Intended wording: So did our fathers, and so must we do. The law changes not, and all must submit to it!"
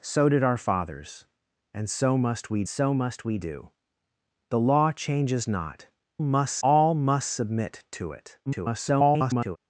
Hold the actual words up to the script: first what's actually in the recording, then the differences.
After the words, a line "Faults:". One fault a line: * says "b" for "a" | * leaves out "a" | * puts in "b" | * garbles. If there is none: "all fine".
So did our fathers, and so must we so must we do. The law changes not, must all must submit to it!" [garbled]
Faults:
* puts in "so must we"
* says "must" for "and"
* garbles